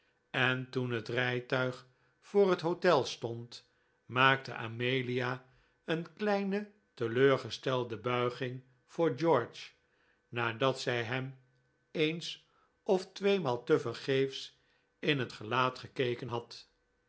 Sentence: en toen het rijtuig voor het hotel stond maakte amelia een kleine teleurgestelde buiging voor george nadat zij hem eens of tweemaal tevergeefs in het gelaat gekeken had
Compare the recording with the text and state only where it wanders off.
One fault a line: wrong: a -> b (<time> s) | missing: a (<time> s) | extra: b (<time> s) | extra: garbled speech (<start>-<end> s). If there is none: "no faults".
no faults